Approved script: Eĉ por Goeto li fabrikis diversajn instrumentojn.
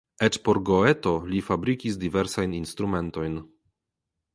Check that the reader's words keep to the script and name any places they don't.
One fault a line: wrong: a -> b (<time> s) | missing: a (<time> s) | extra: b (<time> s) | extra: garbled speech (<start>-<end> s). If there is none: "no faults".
no faults